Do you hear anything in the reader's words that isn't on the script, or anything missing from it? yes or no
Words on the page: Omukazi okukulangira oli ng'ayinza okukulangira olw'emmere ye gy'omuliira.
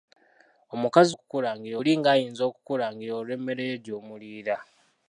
no